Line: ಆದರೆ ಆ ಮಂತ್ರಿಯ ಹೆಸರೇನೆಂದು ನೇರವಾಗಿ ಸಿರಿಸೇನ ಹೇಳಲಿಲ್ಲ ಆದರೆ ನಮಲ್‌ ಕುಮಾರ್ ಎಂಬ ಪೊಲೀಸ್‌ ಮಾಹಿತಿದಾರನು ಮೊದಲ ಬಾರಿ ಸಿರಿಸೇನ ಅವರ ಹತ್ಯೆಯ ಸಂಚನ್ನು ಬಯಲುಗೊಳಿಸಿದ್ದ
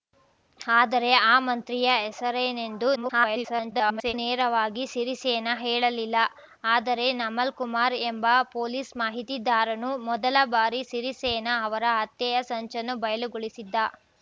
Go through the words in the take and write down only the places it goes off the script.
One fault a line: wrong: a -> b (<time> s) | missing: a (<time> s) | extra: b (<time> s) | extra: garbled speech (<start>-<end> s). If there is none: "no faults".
extra: garbled speech (3.0-4.1 s)